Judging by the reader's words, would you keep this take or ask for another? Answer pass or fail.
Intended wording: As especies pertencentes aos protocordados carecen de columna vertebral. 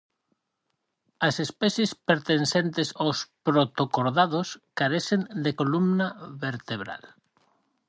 pass